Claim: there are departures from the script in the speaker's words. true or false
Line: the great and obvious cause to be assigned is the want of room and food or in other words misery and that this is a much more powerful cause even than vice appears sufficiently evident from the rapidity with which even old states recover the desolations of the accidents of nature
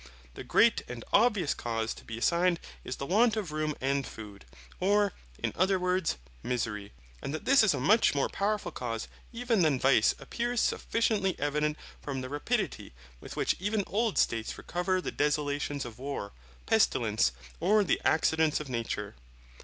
true